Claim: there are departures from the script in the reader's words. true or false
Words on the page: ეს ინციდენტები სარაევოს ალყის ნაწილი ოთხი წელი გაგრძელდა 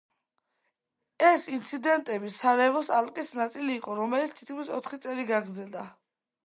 true